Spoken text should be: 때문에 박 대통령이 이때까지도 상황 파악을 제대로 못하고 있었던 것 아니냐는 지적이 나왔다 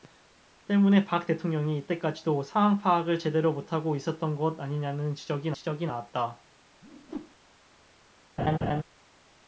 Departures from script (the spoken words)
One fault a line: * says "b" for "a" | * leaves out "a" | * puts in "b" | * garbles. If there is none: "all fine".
* puts in "지적이"